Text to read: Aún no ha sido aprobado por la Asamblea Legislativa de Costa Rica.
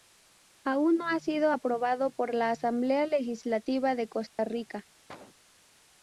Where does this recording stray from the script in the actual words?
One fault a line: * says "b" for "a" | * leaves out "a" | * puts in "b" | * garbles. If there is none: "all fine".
all fine